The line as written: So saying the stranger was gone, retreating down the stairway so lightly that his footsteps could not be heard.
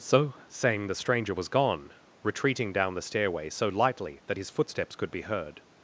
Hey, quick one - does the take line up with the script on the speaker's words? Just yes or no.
no